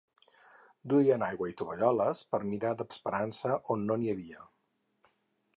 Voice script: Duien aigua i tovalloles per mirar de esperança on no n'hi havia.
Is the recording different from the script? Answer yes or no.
no